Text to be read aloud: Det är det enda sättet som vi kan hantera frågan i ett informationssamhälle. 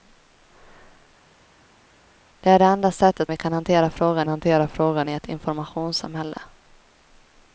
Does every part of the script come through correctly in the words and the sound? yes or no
no